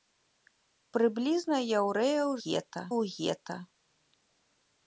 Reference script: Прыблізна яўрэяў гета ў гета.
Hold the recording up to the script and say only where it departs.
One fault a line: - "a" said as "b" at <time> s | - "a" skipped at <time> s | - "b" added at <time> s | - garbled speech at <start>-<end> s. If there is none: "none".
none